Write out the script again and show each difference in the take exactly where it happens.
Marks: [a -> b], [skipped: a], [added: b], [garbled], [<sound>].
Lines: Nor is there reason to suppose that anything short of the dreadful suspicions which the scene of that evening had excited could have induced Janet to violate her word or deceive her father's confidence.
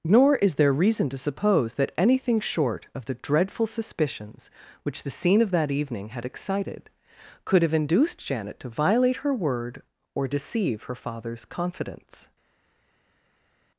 Nor is there reason to suppose that anything short of the dreadful suspicions which the scene of that evening had excited could have induced Janet to violate her word or deceive her father's confidence.